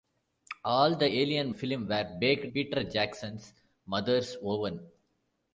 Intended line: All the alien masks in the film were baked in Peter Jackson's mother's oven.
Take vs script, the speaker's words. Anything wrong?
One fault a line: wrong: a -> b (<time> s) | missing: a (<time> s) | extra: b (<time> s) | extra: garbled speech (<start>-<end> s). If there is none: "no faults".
missing: masks in the (1.5 s)
missing: in (2.5 s)